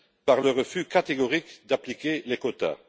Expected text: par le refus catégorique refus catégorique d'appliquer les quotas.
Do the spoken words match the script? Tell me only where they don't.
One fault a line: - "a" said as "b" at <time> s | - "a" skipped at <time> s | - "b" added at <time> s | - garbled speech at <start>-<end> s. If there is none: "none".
- "refus catégorique" skipped at 1.6 s